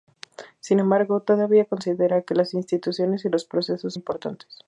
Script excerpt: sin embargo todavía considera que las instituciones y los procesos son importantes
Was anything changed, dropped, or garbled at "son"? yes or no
yes